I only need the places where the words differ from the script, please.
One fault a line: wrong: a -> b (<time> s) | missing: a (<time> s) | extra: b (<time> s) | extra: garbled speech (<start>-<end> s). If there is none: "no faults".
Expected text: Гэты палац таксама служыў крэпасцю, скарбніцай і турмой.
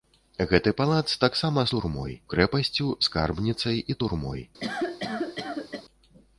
wrong: служыў -> турмой (1.8 s)